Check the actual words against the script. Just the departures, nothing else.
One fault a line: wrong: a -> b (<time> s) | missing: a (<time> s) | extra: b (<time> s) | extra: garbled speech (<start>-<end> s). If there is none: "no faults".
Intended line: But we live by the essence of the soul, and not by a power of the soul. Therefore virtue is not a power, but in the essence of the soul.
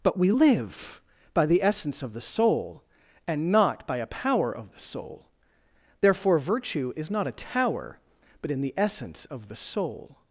wrong: power -> tower (7.3 s)